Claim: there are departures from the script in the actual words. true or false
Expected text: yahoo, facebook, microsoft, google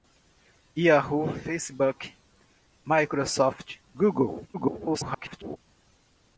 true